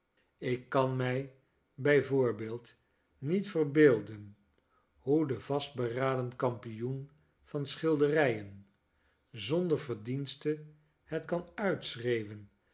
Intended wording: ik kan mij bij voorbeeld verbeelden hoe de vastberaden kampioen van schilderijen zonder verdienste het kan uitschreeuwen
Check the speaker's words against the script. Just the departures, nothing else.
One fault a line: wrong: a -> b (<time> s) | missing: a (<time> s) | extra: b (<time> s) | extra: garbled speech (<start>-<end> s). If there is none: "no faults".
extra: niet (3.2 s)